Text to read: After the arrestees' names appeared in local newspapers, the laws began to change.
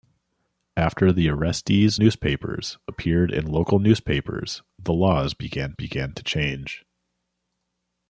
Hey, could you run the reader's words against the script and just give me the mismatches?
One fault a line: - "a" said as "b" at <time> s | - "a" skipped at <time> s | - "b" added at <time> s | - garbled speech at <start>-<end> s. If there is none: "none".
- "names" said as "newspapers" at 1.9 s
- "began" added at 5.7 s